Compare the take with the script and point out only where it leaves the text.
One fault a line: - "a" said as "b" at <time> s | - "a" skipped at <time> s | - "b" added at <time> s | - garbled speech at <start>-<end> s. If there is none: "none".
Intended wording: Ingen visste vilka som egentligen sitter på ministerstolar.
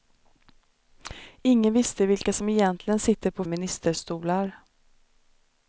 none